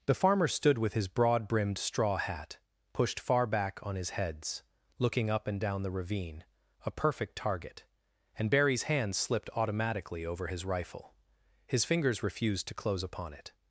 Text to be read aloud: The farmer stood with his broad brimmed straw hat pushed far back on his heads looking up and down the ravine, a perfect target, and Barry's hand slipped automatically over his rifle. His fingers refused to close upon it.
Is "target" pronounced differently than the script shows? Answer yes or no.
no